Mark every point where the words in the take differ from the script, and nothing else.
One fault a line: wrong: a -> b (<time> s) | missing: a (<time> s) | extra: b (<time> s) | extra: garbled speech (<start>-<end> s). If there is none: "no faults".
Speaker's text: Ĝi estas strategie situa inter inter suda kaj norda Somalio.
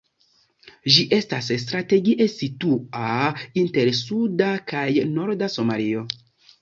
missing: inter (3.9 s)